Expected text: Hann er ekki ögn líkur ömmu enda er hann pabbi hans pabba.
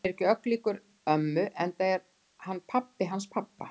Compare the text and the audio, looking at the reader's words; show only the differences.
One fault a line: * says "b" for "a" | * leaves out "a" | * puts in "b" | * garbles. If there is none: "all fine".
all fine